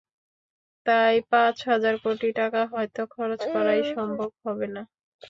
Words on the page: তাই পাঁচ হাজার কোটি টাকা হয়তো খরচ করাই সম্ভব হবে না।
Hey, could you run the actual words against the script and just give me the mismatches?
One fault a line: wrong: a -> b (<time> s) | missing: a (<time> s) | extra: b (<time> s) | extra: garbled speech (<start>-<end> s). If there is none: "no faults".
no faults